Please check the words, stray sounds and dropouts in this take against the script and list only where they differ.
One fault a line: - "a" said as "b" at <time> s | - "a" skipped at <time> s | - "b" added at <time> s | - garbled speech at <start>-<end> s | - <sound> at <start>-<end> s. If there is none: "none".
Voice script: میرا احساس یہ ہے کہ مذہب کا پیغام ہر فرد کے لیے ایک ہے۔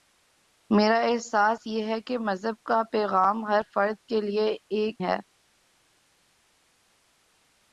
none